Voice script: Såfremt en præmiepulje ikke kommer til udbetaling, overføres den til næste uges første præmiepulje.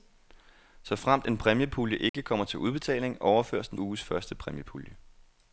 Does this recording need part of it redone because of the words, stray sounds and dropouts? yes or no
yes